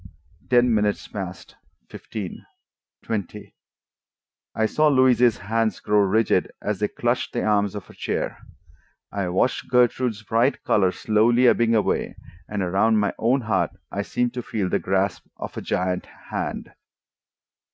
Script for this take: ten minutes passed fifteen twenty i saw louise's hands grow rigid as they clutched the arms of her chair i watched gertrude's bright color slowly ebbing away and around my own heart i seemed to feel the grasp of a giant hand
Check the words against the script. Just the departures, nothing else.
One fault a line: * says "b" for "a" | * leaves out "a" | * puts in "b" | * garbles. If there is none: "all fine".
all fine